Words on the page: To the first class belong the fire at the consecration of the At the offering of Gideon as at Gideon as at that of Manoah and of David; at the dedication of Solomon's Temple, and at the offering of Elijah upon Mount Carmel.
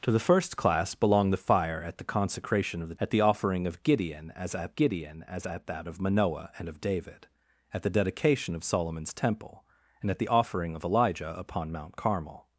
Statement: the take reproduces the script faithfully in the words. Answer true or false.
true